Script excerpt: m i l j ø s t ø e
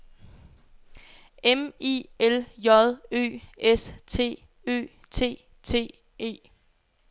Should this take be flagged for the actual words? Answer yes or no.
yes